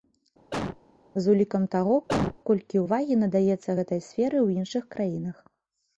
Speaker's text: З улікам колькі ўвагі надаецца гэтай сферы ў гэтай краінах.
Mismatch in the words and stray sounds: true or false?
true